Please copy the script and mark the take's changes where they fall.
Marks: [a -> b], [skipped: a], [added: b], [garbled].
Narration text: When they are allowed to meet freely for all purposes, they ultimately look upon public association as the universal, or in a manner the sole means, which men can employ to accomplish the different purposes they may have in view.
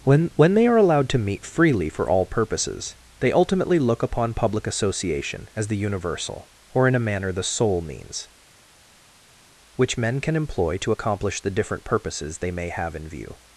When [added: when] they are allowed to meet freely for all purposes, they ultimately look upon public association as the universal, or in a manner the sole means, which men can employ to accomplish the different purposes they may have in view.